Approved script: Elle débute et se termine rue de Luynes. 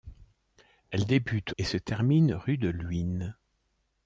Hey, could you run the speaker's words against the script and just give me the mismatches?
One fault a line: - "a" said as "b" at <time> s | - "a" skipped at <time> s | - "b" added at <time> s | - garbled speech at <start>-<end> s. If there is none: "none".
none